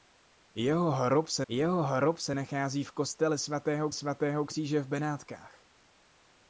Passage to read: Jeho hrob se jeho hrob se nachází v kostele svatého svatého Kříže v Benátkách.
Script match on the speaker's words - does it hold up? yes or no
yes